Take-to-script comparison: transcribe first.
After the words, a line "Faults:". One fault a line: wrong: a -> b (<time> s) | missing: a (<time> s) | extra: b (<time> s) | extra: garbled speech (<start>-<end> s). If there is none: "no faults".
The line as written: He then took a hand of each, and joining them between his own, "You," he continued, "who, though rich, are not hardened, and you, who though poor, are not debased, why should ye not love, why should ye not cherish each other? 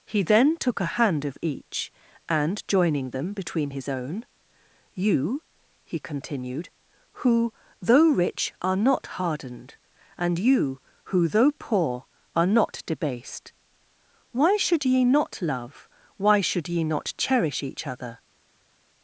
He then took a hand of each, and joining them between his own, "You," he continued, "who, though rich, are not hardened, and you, who though poor, are not debased, why should ye not love, why should ye not cherish each other?
Faults:
no faults